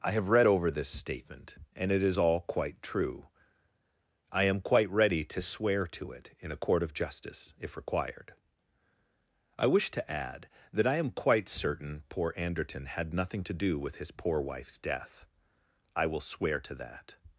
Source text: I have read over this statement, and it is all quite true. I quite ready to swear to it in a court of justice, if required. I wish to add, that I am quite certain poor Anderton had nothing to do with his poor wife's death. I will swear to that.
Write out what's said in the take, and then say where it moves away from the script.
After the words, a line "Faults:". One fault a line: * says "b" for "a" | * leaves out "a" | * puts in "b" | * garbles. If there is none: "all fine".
I have read over this statement, and it is all quite true. I am quite ready to swear to it in a court of justice, if required. I wish to add, that I am quite certain poor Anderton had nothing to do with his poor wife's death. I will swear to that.
Faults:
* puts in "am"